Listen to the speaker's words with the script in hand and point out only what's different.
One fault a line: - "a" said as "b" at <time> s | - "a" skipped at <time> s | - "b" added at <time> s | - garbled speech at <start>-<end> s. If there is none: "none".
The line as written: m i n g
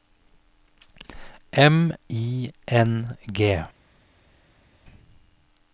none